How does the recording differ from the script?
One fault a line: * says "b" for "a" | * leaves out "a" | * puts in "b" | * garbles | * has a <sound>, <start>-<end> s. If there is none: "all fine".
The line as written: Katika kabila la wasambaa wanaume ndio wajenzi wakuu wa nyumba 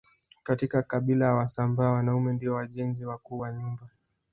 all fine